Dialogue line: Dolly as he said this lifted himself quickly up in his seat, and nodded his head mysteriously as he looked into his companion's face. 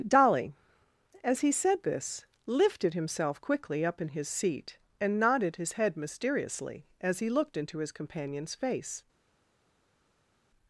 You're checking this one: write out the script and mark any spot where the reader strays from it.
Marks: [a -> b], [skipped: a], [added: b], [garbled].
Dolly as he said this lifted himself quickly up in his seat, and nodded his head mysteriously as he looked into his companion's face.